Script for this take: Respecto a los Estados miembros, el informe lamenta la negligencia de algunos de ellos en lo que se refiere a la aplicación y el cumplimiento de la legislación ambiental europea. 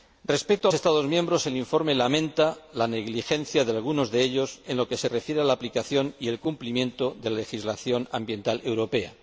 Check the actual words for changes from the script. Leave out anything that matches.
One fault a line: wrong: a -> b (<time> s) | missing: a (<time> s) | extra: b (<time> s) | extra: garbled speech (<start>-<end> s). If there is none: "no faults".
missing: los (0.7 s)